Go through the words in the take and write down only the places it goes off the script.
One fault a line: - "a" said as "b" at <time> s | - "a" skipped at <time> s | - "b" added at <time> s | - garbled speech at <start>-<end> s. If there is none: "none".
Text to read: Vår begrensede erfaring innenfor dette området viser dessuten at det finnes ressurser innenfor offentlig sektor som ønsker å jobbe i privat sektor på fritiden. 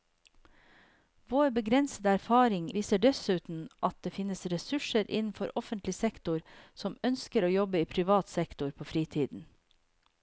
- "innenfor dette området" skipped at 2.7 s